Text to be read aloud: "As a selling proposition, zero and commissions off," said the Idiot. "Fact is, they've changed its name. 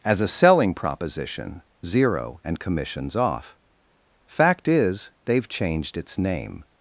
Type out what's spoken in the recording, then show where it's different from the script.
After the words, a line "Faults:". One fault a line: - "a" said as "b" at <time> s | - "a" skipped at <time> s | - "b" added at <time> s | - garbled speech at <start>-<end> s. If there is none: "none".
"As a selling proposition, zero and commissions off," "Fact is, they've changed its name.
Faults:
- "said the Idiot" skipped at 3.6 s